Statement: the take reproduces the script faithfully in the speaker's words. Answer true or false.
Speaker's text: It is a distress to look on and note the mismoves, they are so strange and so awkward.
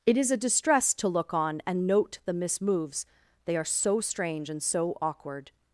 true